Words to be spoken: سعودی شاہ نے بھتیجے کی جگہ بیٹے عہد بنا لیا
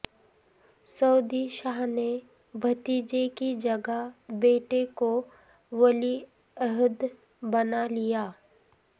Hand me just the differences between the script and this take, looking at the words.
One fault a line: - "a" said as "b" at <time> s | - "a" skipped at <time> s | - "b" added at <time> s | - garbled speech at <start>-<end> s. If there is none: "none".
- "کو ولی" added at 5.0 s